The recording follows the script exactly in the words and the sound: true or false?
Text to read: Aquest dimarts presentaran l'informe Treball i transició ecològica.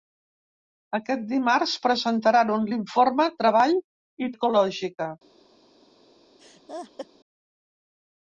false